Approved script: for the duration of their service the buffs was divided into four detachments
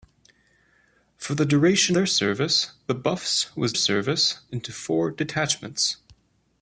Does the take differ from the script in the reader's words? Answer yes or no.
yes